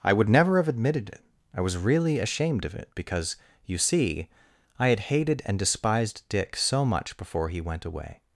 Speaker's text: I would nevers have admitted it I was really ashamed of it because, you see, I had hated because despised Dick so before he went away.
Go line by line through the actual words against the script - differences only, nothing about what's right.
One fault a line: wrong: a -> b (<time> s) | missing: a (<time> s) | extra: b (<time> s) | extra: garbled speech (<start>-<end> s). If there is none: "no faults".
wrong: nevers -> never (0.3 s)
wrong: because -> and (5.5 s)
extra: much (6.8 s)